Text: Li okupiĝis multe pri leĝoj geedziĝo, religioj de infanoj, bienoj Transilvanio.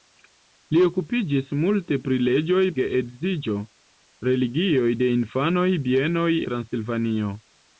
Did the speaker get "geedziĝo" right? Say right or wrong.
right